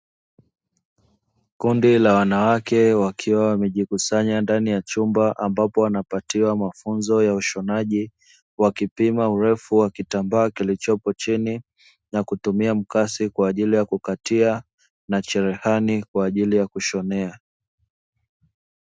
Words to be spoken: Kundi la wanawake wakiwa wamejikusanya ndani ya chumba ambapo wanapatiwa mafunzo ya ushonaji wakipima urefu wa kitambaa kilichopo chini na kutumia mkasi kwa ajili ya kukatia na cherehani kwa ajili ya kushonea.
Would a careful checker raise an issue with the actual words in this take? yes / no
no